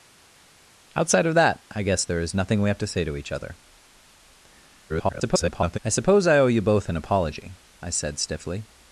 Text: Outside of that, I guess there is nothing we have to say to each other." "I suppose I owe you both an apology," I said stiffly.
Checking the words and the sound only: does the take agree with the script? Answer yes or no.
no